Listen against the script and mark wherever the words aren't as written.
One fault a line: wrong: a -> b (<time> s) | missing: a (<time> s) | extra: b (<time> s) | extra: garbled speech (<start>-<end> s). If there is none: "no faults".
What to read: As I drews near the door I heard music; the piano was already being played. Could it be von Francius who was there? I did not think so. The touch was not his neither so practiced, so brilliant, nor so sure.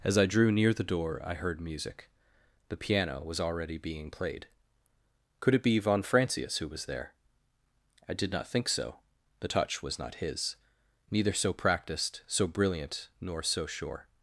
wrong: drews -> drew (0.2 s)